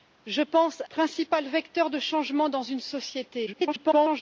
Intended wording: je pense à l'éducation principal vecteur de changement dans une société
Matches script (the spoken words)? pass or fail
fail